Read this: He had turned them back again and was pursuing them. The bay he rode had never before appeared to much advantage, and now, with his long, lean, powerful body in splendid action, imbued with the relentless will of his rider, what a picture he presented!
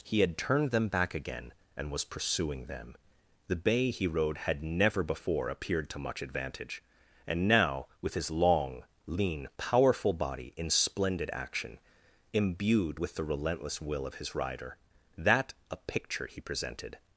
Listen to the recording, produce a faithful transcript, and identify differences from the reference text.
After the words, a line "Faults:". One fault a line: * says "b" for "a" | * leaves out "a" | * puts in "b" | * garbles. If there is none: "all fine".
He had turned them back again and was pursuing them. The bay he rode had never before appeared to much advantage, and now, with his long, lean, powerful body in splendid action, imbued with the relentless will of his rider, that a picture he presented!
Faults:
* says "that" for "what"